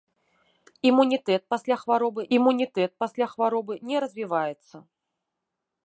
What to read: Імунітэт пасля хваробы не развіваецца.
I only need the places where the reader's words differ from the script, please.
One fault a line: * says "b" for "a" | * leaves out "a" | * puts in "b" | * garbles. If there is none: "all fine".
* puts in "імунітэт пасля хваробы"